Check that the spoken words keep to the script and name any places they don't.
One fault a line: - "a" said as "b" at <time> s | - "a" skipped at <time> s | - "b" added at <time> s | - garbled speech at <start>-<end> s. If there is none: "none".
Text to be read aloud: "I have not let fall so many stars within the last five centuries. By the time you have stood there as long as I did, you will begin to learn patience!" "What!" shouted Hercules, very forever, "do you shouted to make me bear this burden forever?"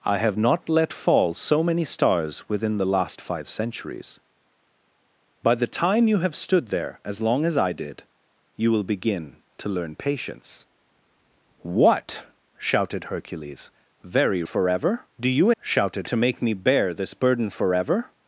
none